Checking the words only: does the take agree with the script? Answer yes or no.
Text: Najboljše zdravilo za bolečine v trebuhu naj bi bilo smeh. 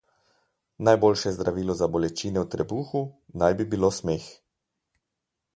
yes